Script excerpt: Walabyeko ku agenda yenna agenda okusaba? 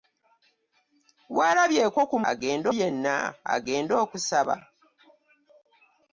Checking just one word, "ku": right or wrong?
right